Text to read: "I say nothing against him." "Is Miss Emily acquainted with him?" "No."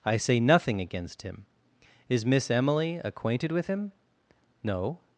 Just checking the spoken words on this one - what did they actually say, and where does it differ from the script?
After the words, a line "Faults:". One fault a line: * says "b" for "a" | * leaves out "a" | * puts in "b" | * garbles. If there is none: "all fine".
"I say nothing against him." "Is Miss Emily acquainted with him?" "No."
Faults:
all fine